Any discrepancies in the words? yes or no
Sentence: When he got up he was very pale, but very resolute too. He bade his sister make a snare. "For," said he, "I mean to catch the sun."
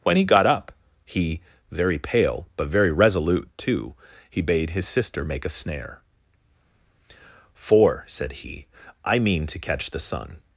yes